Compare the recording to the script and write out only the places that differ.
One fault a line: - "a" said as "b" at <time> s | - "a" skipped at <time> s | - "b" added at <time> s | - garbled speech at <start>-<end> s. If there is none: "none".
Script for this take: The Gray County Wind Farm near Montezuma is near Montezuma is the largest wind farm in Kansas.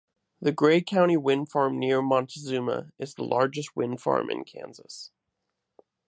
- "near Montezuma is" skipped at 3.1 s